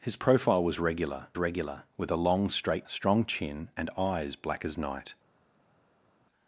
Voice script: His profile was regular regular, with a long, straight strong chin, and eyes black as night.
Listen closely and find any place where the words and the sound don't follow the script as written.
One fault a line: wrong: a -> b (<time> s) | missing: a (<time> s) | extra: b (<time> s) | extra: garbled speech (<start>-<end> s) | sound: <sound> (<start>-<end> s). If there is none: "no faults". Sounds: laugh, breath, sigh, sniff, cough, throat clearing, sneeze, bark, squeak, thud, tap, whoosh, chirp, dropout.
no faults